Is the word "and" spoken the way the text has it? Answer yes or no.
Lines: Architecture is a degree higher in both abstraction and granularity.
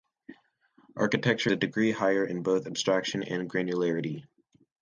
yes